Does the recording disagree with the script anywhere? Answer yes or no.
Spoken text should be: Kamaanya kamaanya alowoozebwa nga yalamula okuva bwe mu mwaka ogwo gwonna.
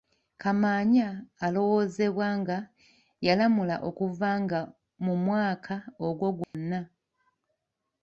yes